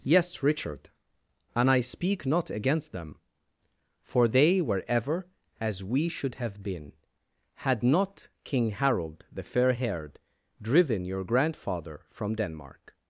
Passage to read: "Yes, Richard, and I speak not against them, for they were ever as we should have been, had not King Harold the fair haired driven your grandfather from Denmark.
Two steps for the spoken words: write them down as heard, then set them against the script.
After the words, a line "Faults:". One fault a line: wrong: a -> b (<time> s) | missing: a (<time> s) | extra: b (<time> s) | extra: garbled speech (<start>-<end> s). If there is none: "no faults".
"Yes, Richard, and I speak not against them, for they were ever as we should have been, had not King Harold the fair haired driven your grandfather from Denmark.
Faults:
no faults